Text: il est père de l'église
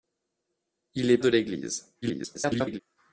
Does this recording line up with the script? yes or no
no